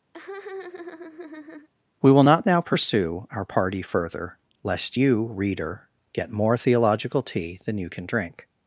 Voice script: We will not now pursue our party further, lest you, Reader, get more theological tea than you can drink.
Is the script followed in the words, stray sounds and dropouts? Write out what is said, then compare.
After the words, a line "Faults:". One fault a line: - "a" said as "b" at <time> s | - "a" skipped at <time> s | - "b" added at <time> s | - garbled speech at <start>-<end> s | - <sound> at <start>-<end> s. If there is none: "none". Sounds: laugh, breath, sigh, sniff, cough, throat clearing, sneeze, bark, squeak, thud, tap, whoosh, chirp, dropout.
We will not now pursue our party further, lest you, Reader, get more theological tea than you can drink.
Faults:
- laugh at 0.1-1.7 s